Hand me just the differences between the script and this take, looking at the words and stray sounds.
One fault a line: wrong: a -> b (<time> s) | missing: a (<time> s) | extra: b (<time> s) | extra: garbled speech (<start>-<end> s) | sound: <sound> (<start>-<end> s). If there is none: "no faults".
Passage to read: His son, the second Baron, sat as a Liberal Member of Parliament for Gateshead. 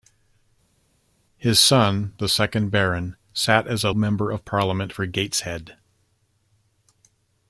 missing: Liberal (3.9 s)